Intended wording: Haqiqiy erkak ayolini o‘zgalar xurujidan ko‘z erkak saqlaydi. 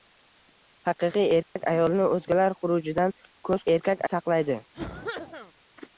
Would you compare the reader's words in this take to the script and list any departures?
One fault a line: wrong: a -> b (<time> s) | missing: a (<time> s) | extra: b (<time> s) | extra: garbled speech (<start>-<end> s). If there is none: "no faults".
no faults